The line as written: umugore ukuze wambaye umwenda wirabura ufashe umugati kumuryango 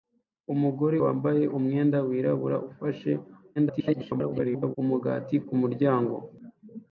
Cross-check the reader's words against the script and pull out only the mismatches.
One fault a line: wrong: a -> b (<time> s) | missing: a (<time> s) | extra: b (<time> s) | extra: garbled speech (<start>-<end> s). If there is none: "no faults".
missing: ukuze (1.0 s)
extra: garbled speech (3.6-4.8 s)